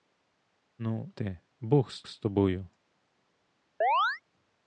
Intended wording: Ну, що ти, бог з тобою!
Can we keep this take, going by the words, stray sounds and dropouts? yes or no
no